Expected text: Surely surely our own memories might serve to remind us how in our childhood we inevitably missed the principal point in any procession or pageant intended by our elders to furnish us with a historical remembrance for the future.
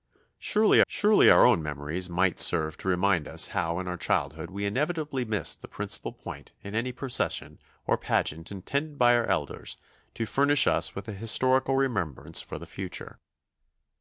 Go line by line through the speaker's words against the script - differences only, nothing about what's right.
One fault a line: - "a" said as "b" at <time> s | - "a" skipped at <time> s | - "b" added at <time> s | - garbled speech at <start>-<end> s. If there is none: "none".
none